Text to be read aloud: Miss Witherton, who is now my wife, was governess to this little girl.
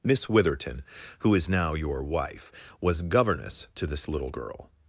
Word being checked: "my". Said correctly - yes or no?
no